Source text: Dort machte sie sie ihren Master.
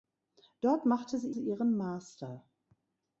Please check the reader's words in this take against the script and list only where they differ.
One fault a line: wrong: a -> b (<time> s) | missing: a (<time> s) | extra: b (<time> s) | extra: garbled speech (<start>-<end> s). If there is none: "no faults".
no faults